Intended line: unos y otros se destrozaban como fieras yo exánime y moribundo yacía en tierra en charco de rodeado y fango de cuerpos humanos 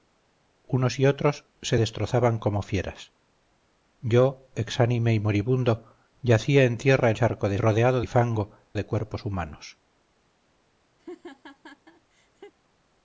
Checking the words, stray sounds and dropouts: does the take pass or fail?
fail